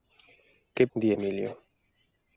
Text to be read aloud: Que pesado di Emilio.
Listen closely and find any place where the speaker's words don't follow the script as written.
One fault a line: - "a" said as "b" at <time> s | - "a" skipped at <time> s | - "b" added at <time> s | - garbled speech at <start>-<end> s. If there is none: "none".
- "pesado" skipped at 0.9 s